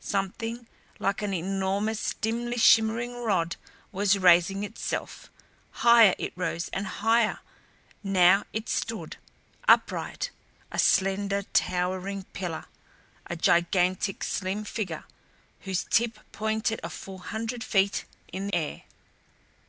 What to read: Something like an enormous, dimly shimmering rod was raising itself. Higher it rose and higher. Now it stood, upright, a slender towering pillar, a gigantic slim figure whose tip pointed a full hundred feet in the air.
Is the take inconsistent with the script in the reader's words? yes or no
yes